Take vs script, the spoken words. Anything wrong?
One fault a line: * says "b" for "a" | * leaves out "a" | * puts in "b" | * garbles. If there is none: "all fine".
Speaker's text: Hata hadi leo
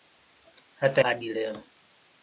all fine